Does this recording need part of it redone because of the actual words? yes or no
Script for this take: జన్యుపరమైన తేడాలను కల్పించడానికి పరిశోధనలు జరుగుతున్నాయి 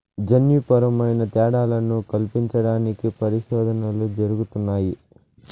no